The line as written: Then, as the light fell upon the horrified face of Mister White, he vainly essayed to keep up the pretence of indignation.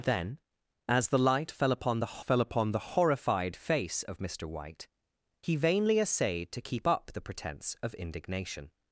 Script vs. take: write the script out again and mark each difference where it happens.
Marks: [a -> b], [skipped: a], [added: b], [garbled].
Then, as the light fell upon the [added: fell upon the] horrified face of Mister White, he vainly essayed to keep up the pretence of indignation.